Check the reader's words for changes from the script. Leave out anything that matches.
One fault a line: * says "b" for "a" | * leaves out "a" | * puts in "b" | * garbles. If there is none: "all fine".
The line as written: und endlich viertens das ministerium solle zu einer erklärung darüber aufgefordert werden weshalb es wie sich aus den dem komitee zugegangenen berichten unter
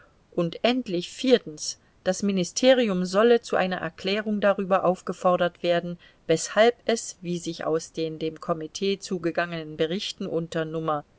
all fine